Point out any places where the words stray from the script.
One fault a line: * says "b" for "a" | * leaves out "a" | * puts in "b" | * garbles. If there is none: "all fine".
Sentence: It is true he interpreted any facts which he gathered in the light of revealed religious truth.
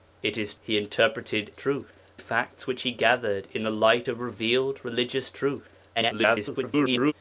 * leaves out "true"
* says "truth" for "any"
* garbles